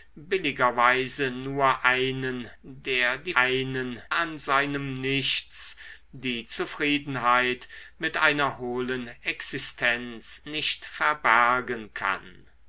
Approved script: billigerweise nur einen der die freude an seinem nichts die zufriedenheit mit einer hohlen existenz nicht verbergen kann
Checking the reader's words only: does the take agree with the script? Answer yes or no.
no